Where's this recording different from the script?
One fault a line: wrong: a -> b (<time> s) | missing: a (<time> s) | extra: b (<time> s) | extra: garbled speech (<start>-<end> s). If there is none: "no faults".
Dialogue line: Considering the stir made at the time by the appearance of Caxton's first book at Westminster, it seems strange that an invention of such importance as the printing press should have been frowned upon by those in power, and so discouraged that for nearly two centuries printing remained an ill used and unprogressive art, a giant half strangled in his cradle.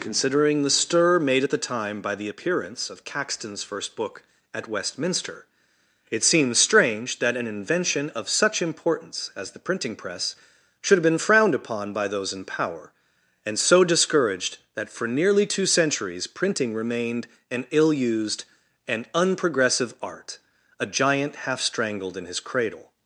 no faults